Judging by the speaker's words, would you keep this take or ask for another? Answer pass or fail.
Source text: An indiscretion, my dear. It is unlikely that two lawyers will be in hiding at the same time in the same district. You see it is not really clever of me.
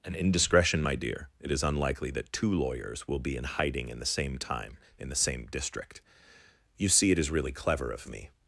fail